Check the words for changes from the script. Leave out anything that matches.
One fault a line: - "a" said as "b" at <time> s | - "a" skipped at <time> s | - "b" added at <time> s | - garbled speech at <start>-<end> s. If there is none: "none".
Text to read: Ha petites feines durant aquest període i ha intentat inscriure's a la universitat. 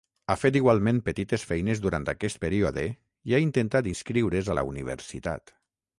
- "fet igualment" added at 0.4 s